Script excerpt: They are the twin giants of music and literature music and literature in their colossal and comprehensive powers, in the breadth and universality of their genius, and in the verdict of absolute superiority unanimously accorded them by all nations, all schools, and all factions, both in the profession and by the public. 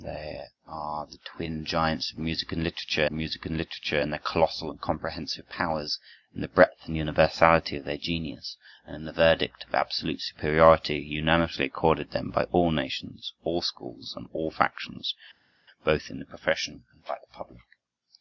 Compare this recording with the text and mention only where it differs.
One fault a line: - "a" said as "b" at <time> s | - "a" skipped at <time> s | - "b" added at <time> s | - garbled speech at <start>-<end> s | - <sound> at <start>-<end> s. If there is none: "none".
none